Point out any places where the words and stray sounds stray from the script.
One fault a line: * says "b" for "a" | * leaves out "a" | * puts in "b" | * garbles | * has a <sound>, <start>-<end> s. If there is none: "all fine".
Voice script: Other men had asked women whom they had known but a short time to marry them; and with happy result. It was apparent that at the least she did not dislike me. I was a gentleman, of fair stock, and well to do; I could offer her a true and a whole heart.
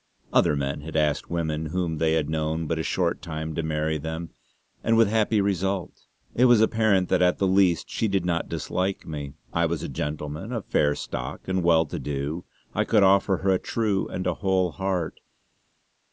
all fine